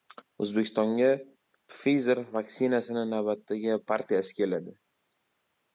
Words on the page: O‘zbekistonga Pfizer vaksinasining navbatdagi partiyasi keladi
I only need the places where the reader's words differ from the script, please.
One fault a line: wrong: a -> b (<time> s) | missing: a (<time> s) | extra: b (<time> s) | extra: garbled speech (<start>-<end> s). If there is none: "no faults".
no faults